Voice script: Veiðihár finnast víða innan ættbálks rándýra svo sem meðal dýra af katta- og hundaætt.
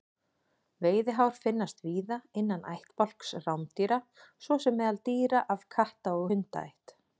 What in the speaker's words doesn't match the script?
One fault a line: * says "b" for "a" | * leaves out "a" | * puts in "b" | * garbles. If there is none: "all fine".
all fine